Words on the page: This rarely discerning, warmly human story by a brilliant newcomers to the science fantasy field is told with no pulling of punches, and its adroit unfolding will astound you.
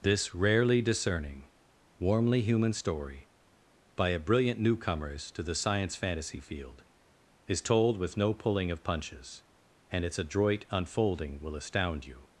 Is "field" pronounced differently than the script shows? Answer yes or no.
no